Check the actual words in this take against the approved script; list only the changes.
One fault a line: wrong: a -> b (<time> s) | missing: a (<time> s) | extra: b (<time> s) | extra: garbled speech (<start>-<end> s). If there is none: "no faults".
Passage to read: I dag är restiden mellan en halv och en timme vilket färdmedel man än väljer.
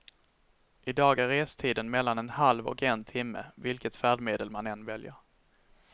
no faults